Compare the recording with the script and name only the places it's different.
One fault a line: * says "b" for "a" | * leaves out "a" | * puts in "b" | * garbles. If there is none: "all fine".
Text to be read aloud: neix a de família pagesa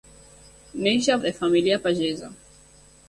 all fine